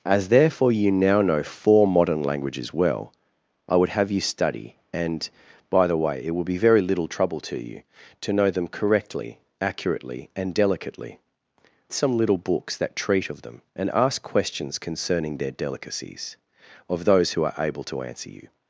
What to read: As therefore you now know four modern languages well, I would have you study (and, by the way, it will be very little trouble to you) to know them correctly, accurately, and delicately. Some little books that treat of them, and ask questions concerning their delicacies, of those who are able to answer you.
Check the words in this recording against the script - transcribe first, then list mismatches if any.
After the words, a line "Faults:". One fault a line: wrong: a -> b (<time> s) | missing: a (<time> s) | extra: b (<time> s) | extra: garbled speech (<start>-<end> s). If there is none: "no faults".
As therefore you now know four modern languages well, I would have you study (and, by the way, it will be very little trouble to you) to know them correctly, accurately, and delicately. Some little books that treat of them, and ask questions concerning their delicacies, of those who are able to answer you.
Faults:
no faults